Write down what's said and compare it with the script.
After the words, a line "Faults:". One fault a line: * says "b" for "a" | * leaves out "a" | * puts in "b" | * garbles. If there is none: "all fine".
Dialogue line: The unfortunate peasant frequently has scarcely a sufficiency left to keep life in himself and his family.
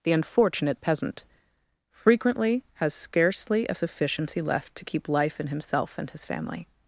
The unfortunate peasant frequently has scarcely a sufficiency left to keep life in himself and his family.
Faults:
all fine